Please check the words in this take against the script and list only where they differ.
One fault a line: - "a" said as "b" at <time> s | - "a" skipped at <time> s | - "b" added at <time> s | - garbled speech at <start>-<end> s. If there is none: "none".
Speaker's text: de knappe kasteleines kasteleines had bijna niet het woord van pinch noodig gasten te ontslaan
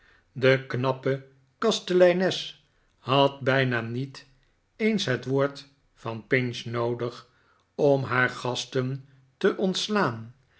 - "kasteleines" skipped at 2.6 s
- "eens" added at 4.8 s
- "om haar" added at 7.7 s